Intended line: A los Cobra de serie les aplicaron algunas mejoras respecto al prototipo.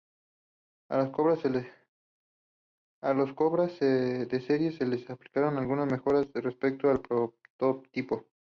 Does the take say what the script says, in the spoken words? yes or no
no